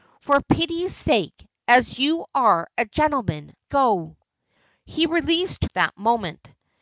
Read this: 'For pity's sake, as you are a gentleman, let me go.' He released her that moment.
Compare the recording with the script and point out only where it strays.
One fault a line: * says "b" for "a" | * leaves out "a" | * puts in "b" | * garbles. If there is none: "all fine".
* leaves out "let me"
* leaves out "her"